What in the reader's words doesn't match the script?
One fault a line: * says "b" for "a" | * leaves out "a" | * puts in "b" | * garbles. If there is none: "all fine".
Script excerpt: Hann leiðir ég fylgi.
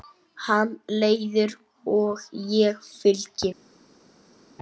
* puts in "og"